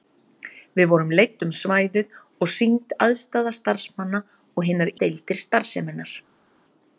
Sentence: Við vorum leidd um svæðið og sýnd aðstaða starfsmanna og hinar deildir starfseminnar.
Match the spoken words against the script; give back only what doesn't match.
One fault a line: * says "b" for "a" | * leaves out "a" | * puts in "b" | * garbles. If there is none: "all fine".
all fine